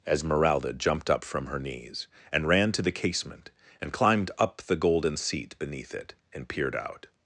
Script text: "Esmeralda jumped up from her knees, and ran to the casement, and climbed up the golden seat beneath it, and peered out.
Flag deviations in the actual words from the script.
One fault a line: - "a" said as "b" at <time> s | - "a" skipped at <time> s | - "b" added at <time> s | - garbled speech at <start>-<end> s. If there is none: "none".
none